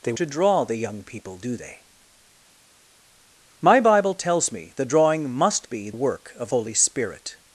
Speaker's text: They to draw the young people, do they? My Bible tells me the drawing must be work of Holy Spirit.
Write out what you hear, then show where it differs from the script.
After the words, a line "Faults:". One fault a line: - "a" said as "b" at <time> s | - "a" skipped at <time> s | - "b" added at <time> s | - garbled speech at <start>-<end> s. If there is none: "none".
They to draw the young people, do they? My Bible tells me the drawing must be work of Holy Spirit.
Faults:
none